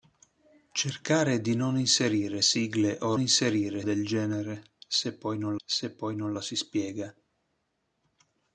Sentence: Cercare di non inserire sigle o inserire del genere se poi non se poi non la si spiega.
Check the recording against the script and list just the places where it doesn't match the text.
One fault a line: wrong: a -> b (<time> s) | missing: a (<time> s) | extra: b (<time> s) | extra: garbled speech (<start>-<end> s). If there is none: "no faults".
no faults